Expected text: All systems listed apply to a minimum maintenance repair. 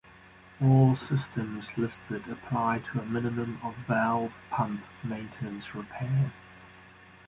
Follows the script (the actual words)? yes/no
no